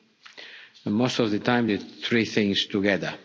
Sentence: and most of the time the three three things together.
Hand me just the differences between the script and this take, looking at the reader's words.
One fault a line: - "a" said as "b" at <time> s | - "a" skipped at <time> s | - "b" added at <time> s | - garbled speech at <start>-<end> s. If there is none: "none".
- "three" skipped at 2.3 s